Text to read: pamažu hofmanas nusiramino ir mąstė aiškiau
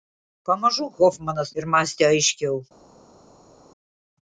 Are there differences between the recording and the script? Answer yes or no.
yes